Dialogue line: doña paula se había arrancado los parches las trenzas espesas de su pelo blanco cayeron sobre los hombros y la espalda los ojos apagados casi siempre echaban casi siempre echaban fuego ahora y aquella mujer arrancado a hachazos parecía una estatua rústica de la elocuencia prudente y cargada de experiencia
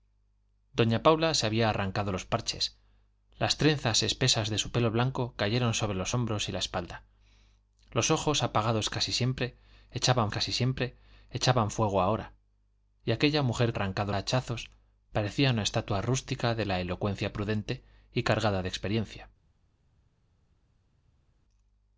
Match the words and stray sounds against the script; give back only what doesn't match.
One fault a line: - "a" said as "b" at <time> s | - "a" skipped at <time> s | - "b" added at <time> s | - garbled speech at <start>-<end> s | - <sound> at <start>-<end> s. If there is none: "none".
none